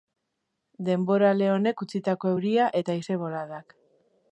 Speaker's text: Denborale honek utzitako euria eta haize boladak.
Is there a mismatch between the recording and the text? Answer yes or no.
no